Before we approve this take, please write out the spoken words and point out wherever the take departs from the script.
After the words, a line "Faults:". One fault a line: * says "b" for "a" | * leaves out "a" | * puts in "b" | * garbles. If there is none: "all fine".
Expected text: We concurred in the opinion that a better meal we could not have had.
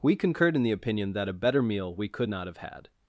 We concurred in the opinion that a better meal we could not have had.
Faults:
all fine